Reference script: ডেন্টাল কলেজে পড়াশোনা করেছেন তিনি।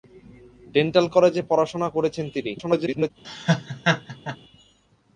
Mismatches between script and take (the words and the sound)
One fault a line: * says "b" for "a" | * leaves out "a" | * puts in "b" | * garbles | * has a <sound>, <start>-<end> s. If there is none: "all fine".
* garbles
* has a laugh, 3.2-4.4 s